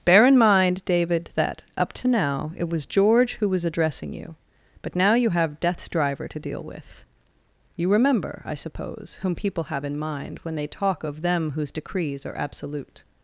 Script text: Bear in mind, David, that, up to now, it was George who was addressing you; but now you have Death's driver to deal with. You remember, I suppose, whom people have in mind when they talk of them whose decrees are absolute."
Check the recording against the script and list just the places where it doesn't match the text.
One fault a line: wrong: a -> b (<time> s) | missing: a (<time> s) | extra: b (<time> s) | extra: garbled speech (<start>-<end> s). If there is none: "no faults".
no faults